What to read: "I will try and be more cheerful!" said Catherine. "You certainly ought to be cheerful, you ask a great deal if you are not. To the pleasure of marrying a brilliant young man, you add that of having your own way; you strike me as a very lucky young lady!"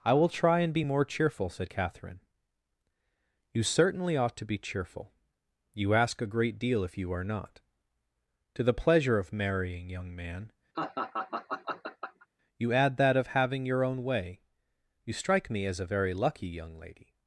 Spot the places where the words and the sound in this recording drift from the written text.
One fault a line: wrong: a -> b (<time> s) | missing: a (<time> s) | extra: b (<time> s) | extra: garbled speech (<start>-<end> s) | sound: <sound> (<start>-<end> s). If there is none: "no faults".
missing: a brilliant (9.9 s)
sound: laugh (10.7-12.3 s)